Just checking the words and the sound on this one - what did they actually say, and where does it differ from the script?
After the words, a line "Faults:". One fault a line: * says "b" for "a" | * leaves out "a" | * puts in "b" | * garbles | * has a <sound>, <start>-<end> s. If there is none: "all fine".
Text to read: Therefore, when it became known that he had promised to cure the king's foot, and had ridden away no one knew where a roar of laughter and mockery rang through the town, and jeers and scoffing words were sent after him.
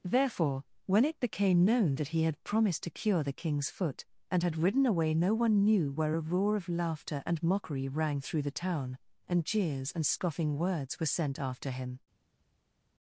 Therefore, when it became known that he had promised to cure the king's foot, and had ridden away no one knew where a roar of laughter and mockery rang through the town, and jeers and scoffing words were sent after him.
Faults:
all fine